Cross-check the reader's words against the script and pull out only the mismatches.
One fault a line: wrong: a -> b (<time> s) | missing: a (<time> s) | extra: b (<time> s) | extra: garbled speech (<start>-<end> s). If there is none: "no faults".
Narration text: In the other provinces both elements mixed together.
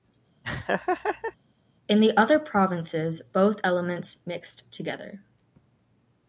no faults